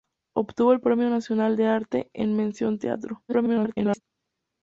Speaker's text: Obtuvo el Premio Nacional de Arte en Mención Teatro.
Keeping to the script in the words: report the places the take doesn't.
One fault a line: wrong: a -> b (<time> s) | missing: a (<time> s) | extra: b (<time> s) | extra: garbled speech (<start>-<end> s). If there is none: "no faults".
extra: garbled speech (3.3-4.0 s)